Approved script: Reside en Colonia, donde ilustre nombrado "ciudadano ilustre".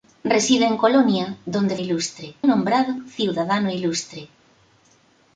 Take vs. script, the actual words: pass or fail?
pass